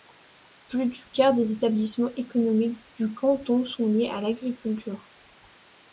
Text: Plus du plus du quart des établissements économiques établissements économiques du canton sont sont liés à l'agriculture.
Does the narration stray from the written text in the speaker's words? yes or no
yes